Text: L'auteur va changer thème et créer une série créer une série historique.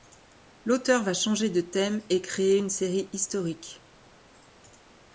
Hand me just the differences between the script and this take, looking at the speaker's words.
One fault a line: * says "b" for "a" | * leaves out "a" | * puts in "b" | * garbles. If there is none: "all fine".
* puts in "de"
* leaves out "créer une série"